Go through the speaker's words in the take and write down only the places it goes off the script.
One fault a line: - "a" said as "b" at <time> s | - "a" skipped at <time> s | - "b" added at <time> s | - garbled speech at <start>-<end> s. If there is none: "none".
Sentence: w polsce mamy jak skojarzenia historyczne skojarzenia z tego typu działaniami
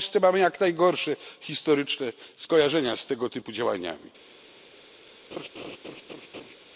- "skojarzenia" said as "najgorsze" at 0.6 s